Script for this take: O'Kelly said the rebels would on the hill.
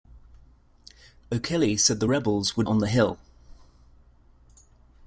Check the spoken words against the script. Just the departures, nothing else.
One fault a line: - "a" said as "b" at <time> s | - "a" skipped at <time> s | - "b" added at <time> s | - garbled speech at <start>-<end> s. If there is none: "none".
none